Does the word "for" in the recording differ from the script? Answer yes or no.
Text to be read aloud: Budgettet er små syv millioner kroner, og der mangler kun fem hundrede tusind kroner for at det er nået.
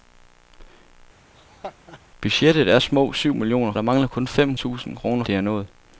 yes